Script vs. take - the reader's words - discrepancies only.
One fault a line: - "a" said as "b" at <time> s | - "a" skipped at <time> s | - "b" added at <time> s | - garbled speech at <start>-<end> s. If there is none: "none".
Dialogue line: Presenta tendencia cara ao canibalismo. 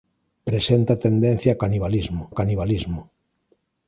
- "cara" said as "canibalismo" at 1.6 s